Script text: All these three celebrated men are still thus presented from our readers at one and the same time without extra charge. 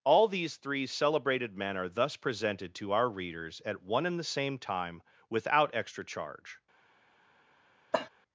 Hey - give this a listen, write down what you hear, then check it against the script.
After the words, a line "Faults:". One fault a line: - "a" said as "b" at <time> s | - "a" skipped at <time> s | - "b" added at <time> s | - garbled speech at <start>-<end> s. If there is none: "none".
All these three celebrated men are thus presented to our readers at one and the same time without extra charge.
Faults:
- "still" skipped at 1.9 s
- "from" said as "to" at 2.8 s